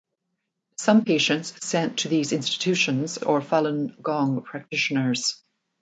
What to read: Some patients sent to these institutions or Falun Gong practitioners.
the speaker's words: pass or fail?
pass